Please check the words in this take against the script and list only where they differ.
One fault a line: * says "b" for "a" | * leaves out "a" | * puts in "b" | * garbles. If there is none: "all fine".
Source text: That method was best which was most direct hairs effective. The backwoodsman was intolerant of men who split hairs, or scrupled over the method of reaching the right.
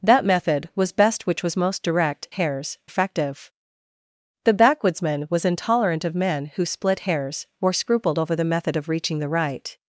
all fine